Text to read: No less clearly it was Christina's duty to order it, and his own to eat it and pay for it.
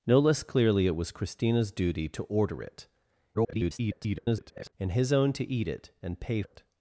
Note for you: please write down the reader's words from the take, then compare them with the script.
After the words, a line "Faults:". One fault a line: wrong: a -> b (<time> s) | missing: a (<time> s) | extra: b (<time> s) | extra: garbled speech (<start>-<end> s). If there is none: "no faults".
No less clearly it was Christina's duty to order it, [garbled] and his own to eat it and pay it.
Faults:
extra: garbled speech (3.3-4.7 s)
missing: for (6.4 s)